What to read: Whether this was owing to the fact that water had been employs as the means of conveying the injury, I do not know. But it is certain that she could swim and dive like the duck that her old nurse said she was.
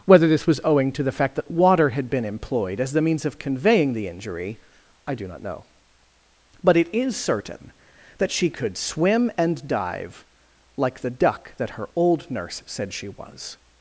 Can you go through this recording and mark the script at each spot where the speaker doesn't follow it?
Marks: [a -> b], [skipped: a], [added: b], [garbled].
Whether this was owing to the fact that water had been [employs -> employed] as the means of conveying the injury, I do not know. But it is certain that she could swim and dive like the duck that her old nurse said she was.